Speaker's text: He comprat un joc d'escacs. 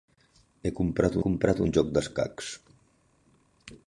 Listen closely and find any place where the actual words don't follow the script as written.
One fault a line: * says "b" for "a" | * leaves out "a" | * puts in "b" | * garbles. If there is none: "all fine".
* puts in "comprat"